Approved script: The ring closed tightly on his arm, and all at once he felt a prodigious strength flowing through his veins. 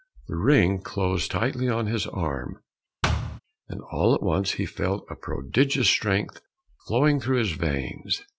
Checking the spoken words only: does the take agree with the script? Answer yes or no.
yes